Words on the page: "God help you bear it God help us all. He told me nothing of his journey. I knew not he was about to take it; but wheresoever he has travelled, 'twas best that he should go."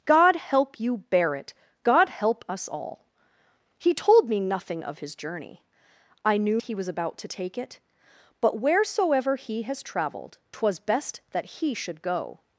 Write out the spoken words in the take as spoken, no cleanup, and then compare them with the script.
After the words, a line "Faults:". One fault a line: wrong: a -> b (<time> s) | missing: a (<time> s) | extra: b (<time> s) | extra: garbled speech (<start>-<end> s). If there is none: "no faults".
"God help you bear it God help us all. He told me nothing of his journey. I knew he was about to take it; but wheresoever he has travelled, 'twas best that he should go."
Faults:
missing: not (6.6 s)